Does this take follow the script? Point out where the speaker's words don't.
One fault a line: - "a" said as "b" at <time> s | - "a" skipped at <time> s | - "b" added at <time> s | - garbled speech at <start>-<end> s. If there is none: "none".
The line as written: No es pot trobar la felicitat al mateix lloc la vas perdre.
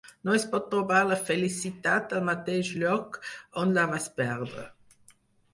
- "on" added at 3.6 s